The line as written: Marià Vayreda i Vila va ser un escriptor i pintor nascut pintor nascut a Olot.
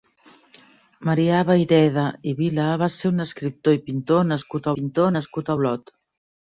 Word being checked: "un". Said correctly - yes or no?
yes